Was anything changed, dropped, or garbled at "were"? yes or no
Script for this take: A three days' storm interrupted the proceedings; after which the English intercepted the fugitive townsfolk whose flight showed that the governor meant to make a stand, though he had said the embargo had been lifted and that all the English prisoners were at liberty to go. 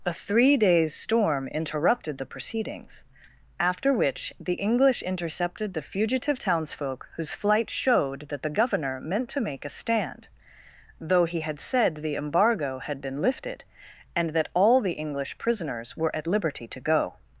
no